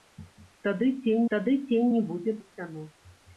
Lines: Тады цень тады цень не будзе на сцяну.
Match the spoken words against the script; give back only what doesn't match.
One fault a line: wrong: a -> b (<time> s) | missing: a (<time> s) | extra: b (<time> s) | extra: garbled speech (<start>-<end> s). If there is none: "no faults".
no faults